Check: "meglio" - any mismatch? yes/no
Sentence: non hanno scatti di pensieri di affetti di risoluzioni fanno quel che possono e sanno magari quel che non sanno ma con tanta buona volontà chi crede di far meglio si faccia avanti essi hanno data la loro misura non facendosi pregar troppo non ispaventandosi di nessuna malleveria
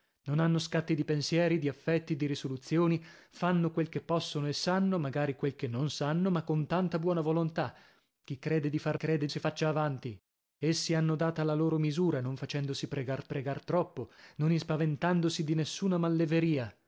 yes